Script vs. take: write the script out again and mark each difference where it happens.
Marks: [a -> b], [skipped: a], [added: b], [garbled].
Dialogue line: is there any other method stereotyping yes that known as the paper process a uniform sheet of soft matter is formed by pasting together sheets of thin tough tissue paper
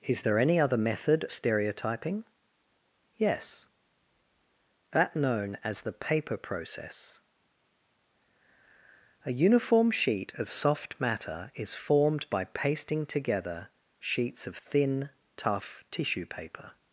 is there any other method stereotyping yes that known as the paper process a uniform sheet of soft matter is formed by pasting together sheets of thin tough tissue paper